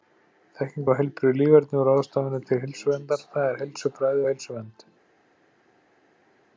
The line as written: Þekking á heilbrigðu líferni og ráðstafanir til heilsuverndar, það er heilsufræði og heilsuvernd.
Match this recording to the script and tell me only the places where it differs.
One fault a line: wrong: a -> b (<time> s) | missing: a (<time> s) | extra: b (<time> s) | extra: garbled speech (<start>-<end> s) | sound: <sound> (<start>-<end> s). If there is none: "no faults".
no faults